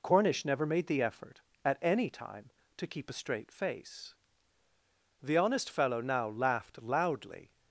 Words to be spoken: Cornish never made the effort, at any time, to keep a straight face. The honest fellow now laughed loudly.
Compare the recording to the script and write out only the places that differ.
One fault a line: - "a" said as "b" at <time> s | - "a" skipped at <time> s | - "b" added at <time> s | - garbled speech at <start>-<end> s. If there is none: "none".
none